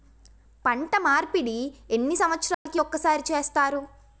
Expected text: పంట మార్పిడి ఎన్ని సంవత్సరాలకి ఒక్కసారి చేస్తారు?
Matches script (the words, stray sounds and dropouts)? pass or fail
fail